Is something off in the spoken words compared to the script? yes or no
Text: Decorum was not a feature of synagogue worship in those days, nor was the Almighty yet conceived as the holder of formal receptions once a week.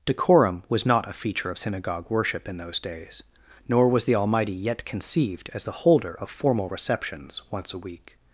no